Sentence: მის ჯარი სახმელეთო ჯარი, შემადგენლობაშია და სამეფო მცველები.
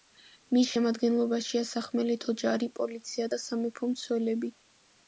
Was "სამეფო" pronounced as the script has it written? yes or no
yes